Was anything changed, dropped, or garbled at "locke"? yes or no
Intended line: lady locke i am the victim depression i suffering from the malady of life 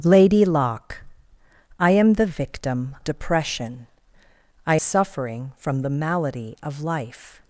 no